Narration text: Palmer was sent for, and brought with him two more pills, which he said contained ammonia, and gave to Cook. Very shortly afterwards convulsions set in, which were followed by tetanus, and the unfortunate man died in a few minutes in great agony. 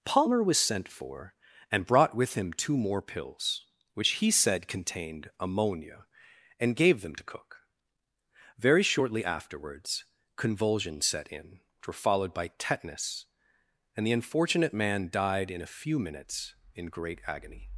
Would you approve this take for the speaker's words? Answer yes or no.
no